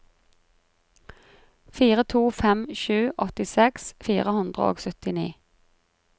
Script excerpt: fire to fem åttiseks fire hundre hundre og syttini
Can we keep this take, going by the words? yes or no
no